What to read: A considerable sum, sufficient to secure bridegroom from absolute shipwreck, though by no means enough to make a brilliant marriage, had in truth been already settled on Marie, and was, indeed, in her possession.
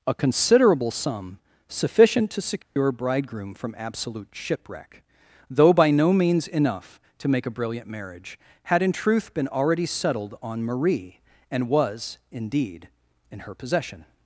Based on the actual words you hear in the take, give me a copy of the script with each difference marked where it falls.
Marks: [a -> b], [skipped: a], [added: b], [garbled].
A considerable sum, sufficient to secure bridegroom from absolute shipwreck, though by no means enough to make a brilliant marriage, had in truth been already settled on Marie, and was, indeed, in her possession.